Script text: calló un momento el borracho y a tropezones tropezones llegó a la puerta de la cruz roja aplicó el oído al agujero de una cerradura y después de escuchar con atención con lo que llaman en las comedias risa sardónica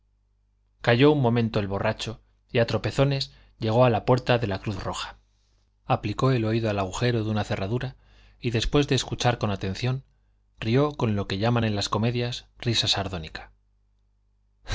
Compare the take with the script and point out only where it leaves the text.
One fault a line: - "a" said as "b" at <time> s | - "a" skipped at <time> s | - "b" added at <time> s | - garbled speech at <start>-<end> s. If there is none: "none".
- "tropezones" skipped at 3.3 s
- "rió" added at 10.6 s